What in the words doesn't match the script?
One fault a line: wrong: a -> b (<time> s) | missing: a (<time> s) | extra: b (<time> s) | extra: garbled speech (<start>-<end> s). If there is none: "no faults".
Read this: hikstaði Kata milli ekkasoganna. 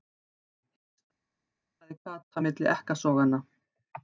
no faults